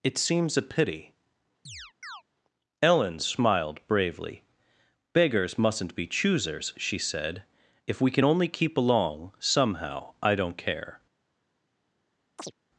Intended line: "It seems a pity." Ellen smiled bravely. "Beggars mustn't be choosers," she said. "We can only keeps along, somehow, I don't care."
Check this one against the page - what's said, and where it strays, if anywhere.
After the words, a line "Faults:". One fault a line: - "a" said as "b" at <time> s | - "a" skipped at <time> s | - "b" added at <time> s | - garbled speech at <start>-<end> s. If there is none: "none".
"It seems a pity." Ellen smiled bravely. "Beggars mustn't be choosers," she said. "If we can only keep along, somehow, I don't care."
Faults:
- "If" added at 7.9 s
- "keeps" said as "keep" at 8.5 s